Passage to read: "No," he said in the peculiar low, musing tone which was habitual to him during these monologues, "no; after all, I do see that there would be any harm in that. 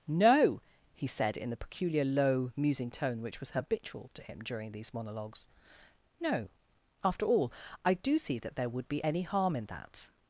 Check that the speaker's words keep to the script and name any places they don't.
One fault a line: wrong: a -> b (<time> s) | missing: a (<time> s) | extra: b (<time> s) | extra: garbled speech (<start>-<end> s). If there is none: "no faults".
no faults